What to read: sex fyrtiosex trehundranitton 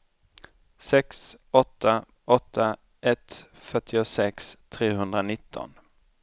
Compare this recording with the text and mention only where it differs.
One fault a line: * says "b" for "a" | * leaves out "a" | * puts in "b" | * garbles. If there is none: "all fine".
* puts in "åtta åtta ett"